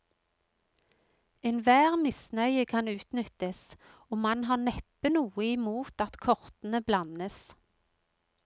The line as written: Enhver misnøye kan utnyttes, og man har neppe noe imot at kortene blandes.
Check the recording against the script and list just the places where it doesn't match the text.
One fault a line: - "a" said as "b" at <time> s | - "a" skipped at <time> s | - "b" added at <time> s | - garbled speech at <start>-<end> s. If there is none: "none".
none